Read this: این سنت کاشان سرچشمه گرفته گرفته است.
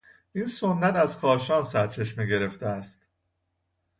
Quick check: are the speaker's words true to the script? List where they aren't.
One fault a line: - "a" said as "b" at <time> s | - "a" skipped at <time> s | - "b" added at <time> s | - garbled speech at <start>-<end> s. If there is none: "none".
- "از" added at 1.0 s
- "گرفته" skipped at 2.7 s